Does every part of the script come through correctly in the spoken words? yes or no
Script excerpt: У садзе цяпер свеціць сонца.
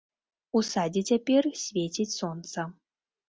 yes